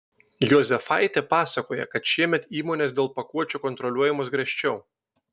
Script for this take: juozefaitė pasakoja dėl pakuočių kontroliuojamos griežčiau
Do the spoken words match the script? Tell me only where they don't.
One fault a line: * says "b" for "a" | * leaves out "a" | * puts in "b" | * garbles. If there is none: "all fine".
* puts in "kad šiemet įmonės"